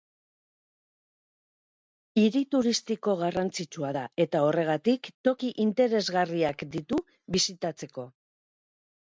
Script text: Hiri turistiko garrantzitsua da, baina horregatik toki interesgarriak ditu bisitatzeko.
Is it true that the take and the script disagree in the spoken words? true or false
true